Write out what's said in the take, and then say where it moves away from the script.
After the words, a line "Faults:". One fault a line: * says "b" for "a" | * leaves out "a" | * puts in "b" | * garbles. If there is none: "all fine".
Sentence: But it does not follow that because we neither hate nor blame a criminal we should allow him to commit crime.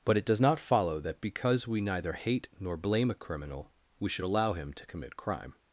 But it does not follow that because we neither hate nor blame a criminal we should allow him to commit crime.
Faults:
all fine